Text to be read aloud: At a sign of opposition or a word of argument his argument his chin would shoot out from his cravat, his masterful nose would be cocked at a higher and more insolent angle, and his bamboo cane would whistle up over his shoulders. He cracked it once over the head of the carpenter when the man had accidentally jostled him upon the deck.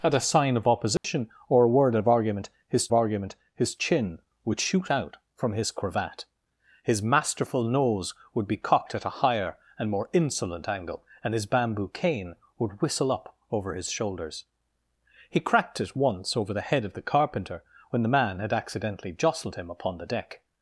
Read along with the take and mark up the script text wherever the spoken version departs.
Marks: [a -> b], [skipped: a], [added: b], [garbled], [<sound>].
At a sign of opposition [dropout] or a word of argument his argument his chin would shoot out from his cravat, his masterful nose would be cocked at a higher and more insolent angle, and his bamboo cane would whistle up over his shoulders. He cracked it once over the head of the carpenter when the man had accidentally jostled him upon the deck.